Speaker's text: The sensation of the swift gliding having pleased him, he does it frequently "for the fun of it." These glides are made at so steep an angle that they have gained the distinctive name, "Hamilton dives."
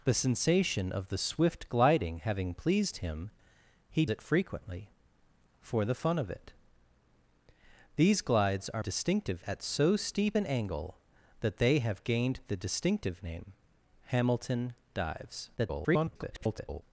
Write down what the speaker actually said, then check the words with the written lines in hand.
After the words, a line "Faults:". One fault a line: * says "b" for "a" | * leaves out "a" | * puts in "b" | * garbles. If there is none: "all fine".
The sensation of the swift gliding having pleased him, he it frequently "for the fun of it." These glides are distinctive at so steep an angle that they have gained the distinctive name, "Hamilton dives." [garbled]
Faults:
* leaves out "does"
* says "distinctive" for "made"
* garbles